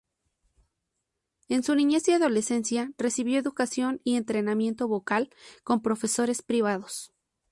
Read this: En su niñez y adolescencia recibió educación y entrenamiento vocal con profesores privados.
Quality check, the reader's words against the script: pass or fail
pass